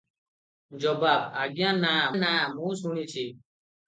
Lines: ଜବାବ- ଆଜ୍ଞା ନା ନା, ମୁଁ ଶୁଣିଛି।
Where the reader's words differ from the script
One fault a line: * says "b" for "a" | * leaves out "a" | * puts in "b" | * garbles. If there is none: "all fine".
all fine